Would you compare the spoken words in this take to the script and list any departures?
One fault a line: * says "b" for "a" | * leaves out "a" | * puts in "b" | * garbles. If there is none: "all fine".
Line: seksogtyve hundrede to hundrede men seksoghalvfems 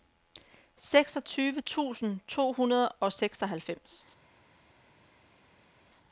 * says "tusind" for "hundrede"
* says "og" for "men"